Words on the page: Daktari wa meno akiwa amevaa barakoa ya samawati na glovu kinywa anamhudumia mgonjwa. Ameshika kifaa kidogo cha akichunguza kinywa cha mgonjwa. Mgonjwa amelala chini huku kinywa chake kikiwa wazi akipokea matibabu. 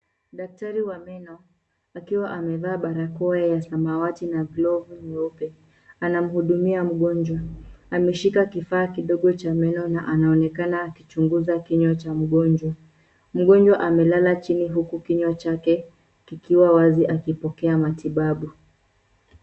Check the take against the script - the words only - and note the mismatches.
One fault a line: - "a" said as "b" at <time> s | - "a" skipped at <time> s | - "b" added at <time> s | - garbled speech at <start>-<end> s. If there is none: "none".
- "kinywa" said as "nyeupe" at 5.0 s
- "meno na anaonekana" added at 9.5 s